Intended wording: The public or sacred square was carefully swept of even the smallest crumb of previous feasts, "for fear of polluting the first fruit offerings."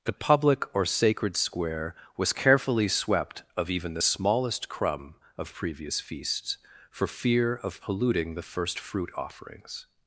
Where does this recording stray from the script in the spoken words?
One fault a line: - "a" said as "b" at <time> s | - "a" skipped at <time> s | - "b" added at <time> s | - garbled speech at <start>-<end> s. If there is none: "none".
none